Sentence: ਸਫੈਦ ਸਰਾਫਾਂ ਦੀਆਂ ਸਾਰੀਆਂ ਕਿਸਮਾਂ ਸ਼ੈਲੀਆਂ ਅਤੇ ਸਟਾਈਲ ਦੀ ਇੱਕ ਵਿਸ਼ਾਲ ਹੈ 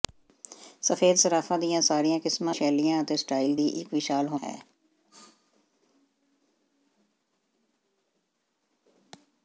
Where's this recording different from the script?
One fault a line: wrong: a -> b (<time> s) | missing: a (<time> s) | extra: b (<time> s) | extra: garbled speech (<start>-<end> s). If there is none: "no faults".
no faults